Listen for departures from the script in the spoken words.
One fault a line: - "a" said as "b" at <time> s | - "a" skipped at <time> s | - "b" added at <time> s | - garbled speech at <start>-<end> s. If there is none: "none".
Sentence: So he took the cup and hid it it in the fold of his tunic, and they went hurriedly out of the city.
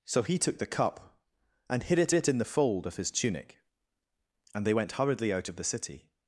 none